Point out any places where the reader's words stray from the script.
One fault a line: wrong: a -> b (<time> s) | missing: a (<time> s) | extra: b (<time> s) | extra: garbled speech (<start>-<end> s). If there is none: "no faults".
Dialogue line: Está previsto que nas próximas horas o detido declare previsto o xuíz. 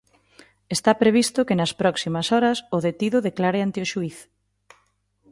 wrong: previsto -> ante (3.6 s)